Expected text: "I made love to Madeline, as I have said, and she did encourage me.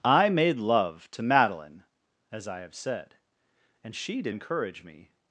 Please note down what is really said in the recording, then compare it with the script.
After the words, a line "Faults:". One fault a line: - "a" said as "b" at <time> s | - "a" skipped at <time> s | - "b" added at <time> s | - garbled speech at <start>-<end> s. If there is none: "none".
"I made love to Madeline, as I have said, and she did encourage me.
Faults:
none